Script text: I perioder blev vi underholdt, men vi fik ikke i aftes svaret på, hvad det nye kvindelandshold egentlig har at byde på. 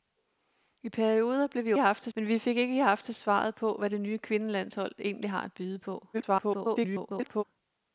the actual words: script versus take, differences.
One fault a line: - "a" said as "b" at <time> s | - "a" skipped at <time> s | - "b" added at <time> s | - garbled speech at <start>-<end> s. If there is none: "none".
- "underholdt" said as "aftes" at 1.8 s
- garbled speech at 6.1-7.4 s